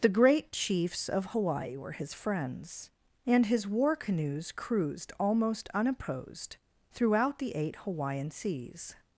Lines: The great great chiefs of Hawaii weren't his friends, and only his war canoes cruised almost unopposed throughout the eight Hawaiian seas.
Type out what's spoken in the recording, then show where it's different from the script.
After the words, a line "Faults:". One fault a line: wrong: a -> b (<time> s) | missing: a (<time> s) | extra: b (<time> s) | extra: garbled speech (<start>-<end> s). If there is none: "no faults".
The great chiefs of Hawaii were his friends, and his war canoes cruised almost unopposed throughout the eight Hawaiian seas.
Faults:
missing: great (0.5 s)
wrong: weren't -> were (1.7 s)
missing: only (3.5 s)